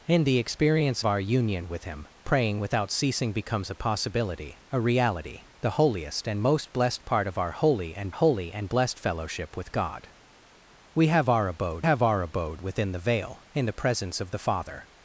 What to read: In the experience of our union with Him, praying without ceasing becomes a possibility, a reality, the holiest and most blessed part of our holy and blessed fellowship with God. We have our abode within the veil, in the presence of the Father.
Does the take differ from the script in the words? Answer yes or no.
yes